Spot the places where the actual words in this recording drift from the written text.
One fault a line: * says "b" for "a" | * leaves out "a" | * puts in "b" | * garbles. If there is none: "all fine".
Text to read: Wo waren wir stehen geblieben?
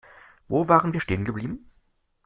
all fine